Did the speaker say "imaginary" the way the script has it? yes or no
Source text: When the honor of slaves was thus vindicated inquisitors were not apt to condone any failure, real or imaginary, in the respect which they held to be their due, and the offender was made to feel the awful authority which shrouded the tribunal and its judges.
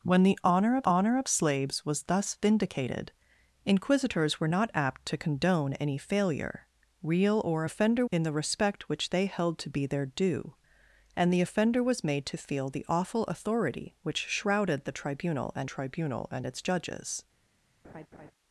no